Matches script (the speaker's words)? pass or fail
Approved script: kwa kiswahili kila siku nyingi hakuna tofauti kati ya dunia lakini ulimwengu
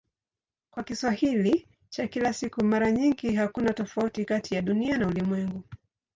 fail